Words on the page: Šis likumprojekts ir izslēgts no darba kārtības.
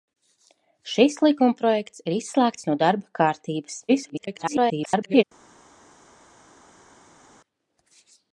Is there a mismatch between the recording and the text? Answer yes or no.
yes